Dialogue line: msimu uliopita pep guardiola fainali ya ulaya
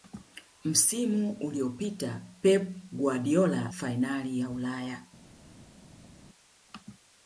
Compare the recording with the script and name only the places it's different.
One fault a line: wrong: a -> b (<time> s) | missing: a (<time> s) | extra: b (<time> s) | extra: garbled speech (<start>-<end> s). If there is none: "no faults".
no faults